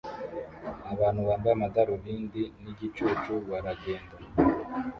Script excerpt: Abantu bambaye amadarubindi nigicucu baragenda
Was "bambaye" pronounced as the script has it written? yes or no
yes